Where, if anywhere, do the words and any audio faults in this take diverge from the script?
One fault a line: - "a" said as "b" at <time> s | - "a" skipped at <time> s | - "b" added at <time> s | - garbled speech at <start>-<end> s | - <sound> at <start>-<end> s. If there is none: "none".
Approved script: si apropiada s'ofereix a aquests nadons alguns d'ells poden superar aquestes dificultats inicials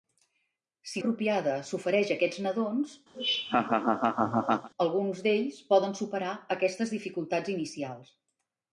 - laugh at 3.1-4.7 s